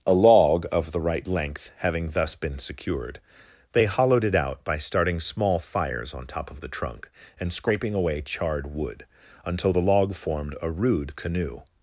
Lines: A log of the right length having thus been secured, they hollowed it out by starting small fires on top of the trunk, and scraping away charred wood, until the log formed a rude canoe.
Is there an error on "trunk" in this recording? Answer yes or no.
no